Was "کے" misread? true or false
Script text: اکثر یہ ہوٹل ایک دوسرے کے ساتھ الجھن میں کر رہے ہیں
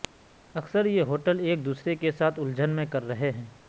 false